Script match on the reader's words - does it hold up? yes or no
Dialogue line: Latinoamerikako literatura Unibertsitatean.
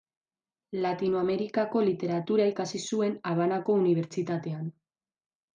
no